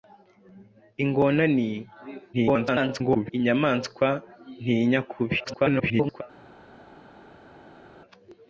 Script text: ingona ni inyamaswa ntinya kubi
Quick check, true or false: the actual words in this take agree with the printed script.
false